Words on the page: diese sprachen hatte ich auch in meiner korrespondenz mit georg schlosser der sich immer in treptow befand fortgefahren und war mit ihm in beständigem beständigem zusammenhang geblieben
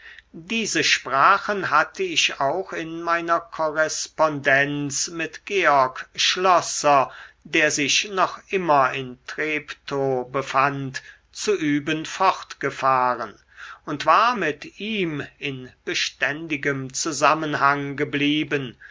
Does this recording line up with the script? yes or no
no